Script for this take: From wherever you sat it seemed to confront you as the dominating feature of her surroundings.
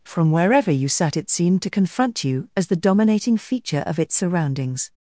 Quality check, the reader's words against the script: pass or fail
fail